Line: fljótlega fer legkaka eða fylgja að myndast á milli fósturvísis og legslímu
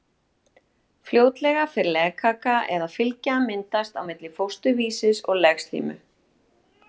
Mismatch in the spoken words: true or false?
false